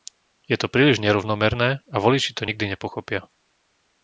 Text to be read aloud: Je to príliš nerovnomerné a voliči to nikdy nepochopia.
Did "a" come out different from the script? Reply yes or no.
no